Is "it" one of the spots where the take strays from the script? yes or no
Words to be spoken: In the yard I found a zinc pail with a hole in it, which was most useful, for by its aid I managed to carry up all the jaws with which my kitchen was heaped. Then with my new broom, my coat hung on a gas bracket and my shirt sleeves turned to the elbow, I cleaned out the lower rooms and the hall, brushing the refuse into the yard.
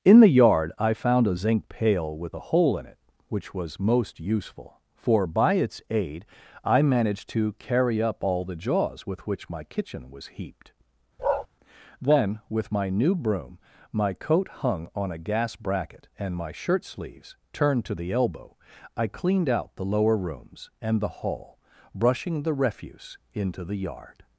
no